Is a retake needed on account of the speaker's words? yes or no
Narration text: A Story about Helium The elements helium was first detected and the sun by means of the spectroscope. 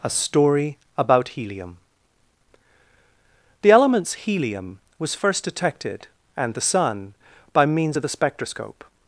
no